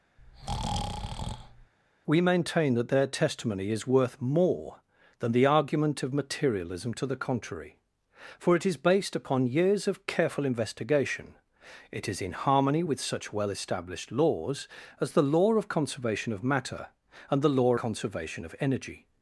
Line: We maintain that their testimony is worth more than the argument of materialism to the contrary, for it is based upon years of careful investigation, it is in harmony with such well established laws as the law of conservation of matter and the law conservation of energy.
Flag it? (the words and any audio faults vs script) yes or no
yes